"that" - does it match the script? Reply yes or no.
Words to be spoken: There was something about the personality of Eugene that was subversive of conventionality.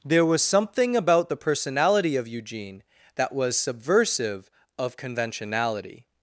yes